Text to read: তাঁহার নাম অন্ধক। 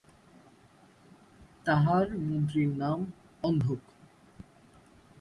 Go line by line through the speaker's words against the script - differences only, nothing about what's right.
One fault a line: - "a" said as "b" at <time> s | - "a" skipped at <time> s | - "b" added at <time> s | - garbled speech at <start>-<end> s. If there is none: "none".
- "মন্ত্রীর" added at 2.2 s